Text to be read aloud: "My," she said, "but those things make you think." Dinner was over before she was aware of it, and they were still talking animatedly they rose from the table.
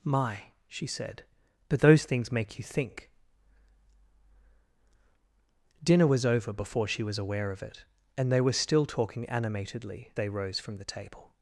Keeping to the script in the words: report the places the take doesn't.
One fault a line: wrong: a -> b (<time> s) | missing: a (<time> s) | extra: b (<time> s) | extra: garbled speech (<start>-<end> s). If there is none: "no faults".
no faults